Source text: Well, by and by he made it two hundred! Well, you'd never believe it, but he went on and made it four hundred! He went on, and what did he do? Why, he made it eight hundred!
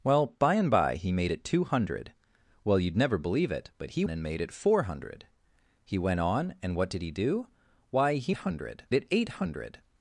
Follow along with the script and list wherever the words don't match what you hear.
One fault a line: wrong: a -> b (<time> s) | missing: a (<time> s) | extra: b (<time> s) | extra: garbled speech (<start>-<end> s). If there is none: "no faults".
missing: went on (4.0 s)
wrong: made -> hundred (8.3 s)